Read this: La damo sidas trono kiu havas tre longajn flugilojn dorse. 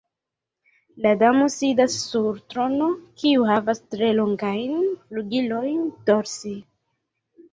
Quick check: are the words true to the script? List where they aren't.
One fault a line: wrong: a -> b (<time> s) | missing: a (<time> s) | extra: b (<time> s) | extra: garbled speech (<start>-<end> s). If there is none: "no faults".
extra: sur (2.0 s)